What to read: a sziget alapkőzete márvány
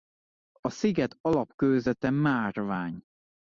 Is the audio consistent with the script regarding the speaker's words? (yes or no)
yes